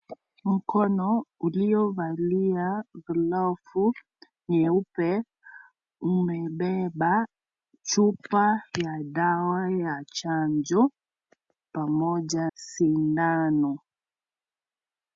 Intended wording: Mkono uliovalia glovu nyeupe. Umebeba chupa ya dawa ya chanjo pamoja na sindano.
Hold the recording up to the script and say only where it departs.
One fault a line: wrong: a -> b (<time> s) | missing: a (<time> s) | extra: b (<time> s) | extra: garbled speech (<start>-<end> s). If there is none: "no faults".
missing: na (12.5 s)